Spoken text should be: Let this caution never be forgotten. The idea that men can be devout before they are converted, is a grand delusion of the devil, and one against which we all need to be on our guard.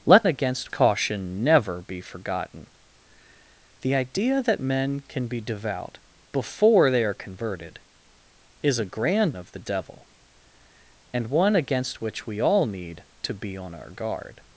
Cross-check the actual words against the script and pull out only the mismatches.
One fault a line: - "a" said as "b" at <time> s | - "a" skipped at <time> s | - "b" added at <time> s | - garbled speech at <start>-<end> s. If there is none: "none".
- "this" said as "against" at 0.3 s
- "delusion" skipped at 9.3 s